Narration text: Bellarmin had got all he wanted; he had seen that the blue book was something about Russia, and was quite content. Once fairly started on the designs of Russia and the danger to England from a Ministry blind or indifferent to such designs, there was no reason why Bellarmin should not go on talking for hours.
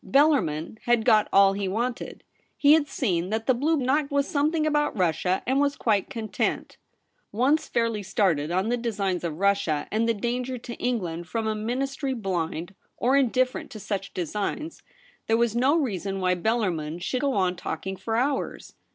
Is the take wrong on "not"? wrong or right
wrong